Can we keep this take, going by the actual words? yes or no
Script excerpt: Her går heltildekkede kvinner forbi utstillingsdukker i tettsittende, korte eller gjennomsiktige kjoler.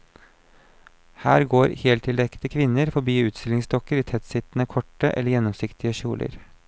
yes